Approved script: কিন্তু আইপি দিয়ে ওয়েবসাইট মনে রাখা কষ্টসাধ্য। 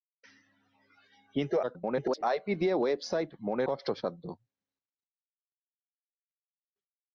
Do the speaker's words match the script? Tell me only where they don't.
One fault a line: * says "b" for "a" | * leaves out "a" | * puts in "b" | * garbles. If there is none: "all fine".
* garbles
* leaves out "রাখা"